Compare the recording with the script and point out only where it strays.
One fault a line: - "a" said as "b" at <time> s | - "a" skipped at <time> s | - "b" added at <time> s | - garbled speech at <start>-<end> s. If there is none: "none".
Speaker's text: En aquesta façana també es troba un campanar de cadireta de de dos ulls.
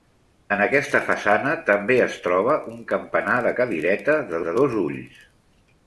none